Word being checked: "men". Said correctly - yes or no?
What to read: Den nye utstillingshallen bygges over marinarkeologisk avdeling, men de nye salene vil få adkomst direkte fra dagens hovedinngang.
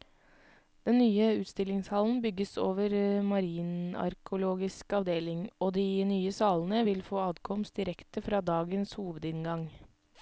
no